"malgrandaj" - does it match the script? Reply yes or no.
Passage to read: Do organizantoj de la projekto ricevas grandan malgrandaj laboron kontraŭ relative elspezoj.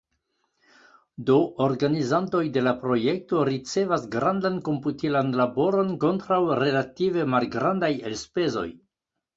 no